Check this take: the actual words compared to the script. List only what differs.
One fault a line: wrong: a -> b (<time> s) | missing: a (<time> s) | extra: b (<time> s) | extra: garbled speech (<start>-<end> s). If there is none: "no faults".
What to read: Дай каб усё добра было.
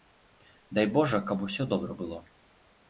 extra: божа (0.9 s)